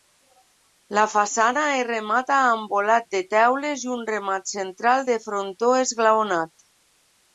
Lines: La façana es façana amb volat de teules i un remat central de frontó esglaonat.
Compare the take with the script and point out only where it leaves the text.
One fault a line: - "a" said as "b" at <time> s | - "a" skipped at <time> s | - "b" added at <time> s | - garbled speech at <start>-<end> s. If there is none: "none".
- "façana" said as "remata" at 1.9 s